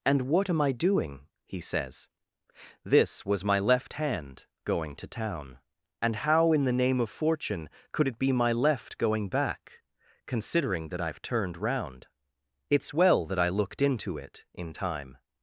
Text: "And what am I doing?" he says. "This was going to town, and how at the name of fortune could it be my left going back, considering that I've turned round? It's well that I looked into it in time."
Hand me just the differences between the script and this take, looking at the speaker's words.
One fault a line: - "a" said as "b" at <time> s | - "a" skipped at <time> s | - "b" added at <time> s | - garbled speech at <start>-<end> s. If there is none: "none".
- "my left hand" added at 3.4 s
- "at" said as "in" at 6.5 s